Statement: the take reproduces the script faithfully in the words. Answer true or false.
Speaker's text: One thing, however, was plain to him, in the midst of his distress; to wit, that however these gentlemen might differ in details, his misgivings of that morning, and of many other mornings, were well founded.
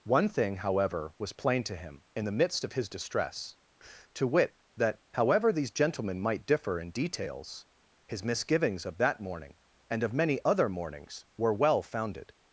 true